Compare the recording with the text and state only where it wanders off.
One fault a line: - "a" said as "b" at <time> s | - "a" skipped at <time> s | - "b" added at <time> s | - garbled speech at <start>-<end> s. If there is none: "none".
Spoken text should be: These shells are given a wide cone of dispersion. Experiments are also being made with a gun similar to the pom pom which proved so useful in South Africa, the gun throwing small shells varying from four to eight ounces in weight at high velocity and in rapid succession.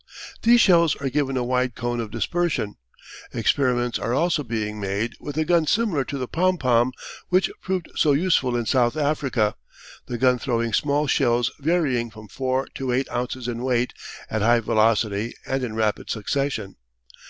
none